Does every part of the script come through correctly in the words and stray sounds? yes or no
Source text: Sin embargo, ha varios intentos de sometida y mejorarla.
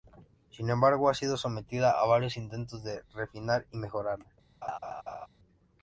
no